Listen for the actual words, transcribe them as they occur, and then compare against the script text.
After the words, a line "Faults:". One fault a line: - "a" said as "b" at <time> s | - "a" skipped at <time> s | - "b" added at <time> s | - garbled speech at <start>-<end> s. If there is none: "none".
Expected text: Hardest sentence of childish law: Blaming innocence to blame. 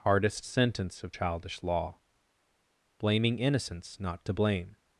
Hardest sentence of childish law: Blaming innocence not to blame.
Faults:
- "not" added at 4.0 s